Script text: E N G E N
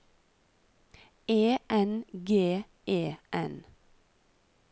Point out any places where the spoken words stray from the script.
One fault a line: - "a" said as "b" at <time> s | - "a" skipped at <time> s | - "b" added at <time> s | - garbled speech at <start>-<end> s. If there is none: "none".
none